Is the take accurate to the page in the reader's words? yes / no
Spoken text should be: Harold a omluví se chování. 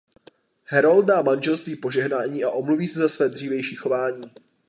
no